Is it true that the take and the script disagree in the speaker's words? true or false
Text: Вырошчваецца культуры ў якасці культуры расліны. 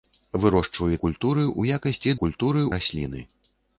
false